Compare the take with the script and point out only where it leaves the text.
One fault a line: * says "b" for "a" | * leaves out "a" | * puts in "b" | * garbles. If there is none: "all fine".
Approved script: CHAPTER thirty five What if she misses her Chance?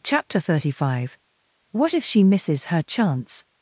all fine